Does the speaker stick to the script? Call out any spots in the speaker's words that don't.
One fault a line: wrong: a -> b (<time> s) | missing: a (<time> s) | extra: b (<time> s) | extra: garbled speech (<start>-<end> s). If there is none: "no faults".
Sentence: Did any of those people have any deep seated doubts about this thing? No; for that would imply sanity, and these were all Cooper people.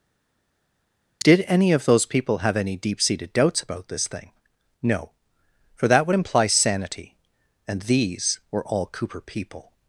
no faults